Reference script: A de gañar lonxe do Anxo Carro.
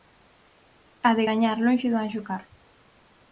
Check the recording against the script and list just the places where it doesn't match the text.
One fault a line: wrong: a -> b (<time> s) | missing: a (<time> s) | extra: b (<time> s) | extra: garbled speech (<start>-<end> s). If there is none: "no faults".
no faults